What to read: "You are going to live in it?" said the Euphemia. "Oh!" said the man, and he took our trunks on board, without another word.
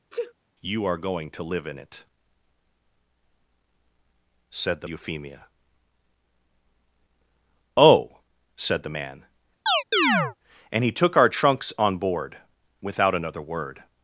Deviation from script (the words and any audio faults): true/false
true